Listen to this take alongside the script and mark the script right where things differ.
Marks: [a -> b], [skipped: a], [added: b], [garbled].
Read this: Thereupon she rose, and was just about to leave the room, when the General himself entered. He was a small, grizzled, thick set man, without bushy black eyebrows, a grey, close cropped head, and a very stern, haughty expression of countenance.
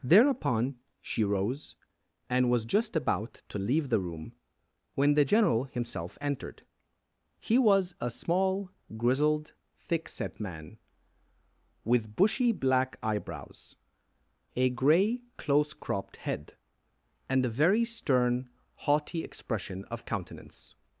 Thereupon she rose, and was just about to leave the room, when the General himself entered. He was a small, grizzled, thick set man, [without -> with] bushy black eyebrows, a grey, close cropped head, and a very stern, haughty expression of countenance.